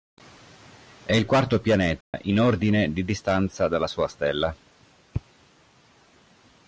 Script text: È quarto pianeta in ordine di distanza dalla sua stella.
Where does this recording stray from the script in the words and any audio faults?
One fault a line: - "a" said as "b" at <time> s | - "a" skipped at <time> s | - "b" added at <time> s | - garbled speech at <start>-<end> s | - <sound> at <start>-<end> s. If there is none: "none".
- "il" added at 1.1 s
- dropout at 2.0-2.1 s